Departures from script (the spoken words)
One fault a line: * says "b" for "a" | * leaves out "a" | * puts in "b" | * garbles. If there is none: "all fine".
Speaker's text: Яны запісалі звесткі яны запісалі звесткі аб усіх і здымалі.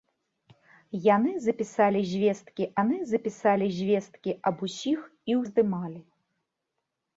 all fine